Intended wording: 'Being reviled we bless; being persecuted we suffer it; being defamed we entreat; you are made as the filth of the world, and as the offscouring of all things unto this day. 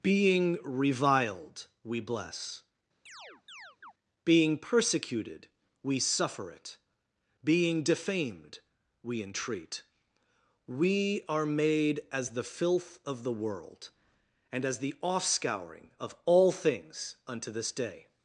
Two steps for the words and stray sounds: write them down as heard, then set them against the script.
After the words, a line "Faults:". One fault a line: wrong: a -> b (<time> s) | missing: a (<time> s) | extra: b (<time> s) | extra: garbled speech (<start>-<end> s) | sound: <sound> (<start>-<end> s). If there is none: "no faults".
'Being reviled we bless; being persecuted we suffer it; being defamed we entreat; we are made as the filth of the world, and as the offscouring of all things unto this day.
Faults:
sound: chirp (3.1-3.9 s)
wrong: you -> we (10.7 s)